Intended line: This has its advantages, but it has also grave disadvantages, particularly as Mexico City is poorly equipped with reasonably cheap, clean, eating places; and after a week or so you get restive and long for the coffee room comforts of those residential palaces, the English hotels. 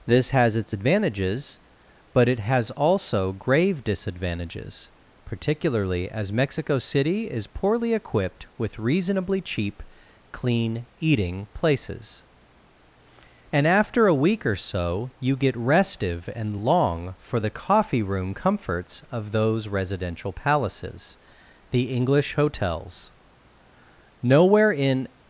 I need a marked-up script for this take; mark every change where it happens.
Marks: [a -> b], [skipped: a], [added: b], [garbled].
This has its advantages, but it has also grave disadvantages, particularly as Mexico City is poorly equipped with reasonably cheap, clean, eating places; and after a week or so you get restive and long for the coffee room comforts of those residential palaces, the English hotels. [added: Nowhere in]